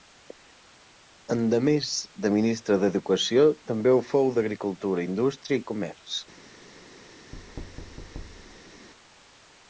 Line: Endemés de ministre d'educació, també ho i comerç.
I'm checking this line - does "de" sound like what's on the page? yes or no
yes